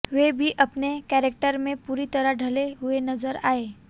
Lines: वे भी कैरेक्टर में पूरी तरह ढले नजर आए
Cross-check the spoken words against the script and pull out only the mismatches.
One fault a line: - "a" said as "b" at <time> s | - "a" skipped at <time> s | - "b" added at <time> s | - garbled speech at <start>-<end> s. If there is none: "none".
- "अपने" added at 0.6 s
- "हुए" added at 2.7 s